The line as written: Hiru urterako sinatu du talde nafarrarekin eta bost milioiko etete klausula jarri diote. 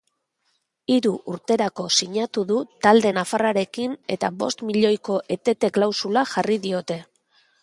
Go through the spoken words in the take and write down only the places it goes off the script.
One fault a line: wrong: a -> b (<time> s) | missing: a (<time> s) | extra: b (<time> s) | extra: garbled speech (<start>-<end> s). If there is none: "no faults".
no faults